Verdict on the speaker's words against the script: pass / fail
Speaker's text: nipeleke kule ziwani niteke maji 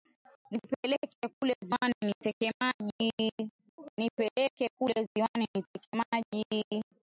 pass